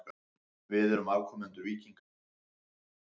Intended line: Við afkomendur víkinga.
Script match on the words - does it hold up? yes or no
no